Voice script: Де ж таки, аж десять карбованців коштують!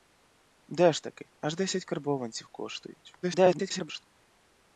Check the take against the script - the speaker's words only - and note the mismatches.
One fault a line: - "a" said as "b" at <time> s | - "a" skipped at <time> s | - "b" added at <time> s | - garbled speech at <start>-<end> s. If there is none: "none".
- garbled speech at 3.2-4.0 s